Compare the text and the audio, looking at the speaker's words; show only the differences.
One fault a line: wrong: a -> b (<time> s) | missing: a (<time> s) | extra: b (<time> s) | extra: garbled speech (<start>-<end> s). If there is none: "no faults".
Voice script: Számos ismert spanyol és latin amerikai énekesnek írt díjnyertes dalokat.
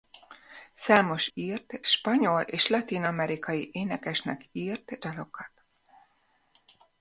wrong: ismert -> írt (1.3 s)
missing: díjnyertes (5.0 s)